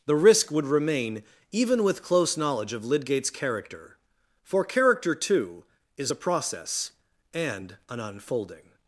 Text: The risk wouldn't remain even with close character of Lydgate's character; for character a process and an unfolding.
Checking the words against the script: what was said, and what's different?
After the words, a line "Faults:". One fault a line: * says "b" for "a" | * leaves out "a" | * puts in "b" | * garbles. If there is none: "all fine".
The risk would remain even with close knowledge of Lydgate's character; for character too is a process and an unfolding.
Faults:
* says "would" for "wouldn't"
* says "knowledge" for "character"
* puts in "too is"